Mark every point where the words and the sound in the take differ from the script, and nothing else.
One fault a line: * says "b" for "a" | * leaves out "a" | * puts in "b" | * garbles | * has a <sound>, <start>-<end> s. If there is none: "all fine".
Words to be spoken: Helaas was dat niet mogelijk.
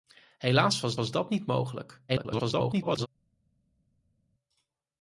* puts in "was"
* garbles